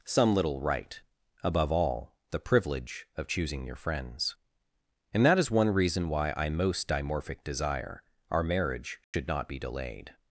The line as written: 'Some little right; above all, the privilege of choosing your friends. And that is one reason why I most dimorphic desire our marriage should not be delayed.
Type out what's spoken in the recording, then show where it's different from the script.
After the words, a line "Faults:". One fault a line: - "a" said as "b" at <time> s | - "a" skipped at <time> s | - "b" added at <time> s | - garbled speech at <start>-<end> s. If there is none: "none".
'Some little right; above all, the privilege of choosing your friends. And that is one reason why I most dimorphic desire our marriage should not be delayed.
Faults:
none